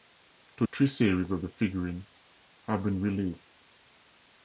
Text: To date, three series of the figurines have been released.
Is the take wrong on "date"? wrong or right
wrong